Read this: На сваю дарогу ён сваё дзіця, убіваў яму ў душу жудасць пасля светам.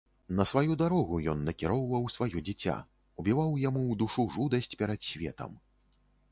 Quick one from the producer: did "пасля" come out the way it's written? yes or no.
no